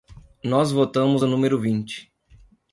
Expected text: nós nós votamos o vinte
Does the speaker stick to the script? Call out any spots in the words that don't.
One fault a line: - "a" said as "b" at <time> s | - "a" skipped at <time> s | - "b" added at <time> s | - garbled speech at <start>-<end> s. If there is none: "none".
- "nós" skipped at 0.7 s
- "número" added at 1.3 s